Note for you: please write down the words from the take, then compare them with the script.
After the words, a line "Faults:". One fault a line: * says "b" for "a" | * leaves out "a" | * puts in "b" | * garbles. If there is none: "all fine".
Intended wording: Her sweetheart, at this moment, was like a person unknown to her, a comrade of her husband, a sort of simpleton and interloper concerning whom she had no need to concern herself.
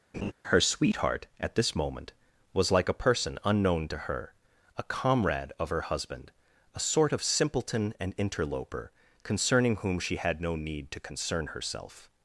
Her sweetheart, at this moment, was like a person unknown to her, a comrade of her husband, a sort of simpleton and interloper concerning whom she had no need to concern herself.
Faults:
all fine